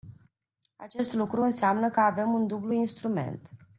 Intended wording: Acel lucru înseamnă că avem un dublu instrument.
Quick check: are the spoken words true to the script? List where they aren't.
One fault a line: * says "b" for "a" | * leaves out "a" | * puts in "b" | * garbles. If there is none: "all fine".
* says "Acest" for "Acel"